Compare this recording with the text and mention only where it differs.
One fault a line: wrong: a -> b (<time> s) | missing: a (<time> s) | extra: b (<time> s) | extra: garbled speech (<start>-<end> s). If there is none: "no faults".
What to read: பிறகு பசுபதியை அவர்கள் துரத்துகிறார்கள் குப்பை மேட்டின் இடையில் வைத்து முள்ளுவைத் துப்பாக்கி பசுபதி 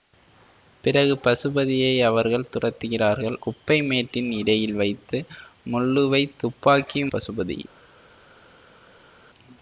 no faults